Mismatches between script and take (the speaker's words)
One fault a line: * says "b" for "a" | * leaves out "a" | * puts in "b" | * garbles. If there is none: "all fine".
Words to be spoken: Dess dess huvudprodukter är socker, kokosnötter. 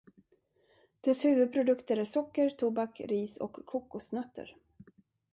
* leaves out "dess"
* puts in "tobak ris och"